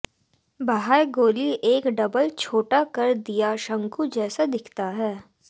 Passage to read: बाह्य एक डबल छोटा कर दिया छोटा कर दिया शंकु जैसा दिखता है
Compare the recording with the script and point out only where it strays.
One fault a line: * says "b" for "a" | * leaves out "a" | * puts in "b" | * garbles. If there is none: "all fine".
* puts in "गोली"
* leaves out "छोटा कर दिया"